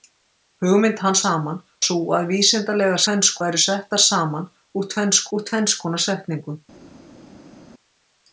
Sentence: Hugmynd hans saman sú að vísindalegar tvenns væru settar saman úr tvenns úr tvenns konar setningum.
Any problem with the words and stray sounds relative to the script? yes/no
no